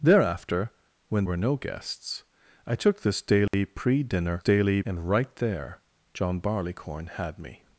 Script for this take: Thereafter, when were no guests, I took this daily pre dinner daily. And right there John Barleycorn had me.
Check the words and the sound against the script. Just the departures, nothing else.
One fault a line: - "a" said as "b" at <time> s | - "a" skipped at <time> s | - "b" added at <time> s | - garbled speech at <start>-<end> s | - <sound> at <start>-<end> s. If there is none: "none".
- dropout at 3.5-3.5 s